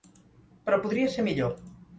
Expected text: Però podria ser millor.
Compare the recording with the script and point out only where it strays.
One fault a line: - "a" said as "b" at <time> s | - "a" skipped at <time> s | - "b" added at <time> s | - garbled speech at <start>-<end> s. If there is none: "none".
none